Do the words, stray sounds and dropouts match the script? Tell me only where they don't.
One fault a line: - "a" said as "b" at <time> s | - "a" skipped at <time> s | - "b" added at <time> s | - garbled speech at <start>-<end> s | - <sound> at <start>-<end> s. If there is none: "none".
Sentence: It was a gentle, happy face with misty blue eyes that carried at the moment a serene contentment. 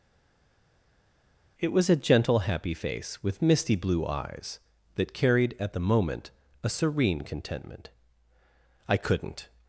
- "I couldn't" added at 8.9 s